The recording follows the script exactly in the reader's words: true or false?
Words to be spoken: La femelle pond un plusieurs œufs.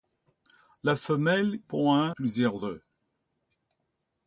true